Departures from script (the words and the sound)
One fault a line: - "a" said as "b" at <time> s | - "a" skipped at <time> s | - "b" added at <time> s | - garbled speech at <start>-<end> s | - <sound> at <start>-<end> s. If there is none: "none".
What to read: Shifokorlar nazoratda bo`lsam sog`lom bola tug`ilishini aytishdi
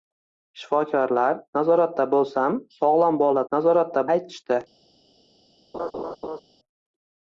- "tug`ilishini" said as "nazoratda" at 3.5 s
- laugh at 5.7-6.4 s